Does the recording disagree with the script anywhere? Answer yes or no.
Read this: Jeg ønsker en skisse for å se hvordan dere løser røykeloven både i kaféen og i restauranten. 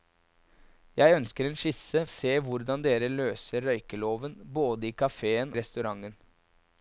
yes